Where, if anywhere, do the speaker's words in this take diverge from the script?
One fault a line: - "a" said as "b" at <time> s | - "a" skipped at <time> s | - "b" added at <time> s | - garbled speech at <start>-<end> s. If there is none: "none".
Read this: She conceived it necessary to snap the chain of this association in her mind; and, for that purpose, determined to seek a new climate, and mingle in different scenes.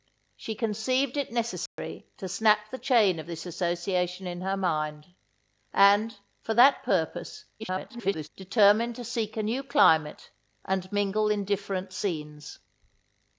- garbled speech at 7.6-8.3 s